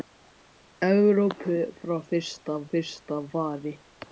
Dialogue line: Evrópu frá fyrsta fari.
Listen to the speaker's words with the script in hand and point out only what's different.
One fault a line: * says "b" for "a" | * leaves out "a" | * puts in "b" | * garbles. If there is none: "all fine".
* puts in "fyrsta"